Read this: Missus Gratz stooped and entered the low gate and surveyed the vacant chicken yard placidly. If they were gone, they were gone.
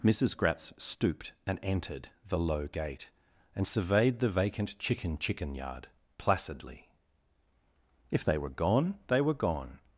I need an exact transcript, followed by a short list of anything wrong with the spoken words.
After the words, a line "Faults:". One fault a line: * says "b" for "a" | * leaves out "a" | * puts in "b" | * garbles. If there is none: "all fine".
Missus Gratz stooped and entered the low gate and surveyed the vacant chicken chicken yard placidly. If they were gone, they were gone.
Faults:
* puts in "chicken"